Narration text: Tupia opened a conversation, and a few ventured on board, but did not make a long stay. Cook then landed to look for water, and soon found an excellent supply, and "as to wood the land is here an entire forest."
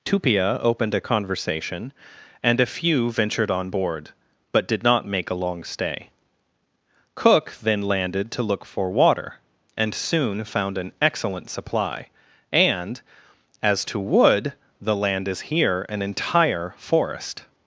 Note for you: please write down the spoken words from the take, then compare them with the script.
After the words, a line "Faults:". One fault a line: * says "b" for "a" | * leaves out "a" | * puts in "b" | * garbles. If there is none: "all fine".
Tupia opened a conversation, and a few ventured on board, but did not make a long stay. Cook then landed to look for water, and soon found an excellent supply, and "as to wood the land is here an entire forest."
Faults:
all fine